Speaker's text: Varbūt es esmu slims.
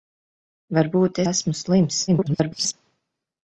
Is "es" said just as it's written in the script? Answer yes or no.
no